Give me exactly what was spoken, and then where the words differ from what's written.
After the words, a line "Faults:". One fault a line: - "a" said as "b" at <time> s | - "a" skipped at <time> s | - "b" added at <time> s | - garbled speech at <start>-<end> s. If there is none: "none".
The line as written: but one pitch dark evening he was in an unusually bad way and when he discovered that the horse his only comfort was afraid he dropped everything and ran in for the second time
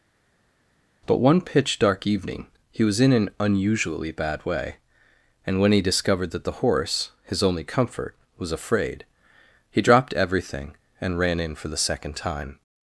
but one pitch dark evening he was in an unusually bad way and when he discovered that the horse his only comfort was afraid he dropped everything and ran in for the second time
Faults:
none